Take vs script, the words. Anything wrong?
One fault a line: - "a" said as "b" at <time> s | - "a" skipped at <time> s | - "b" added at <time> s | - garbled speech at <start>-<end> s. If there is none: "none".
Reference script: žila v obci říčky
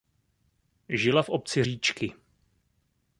none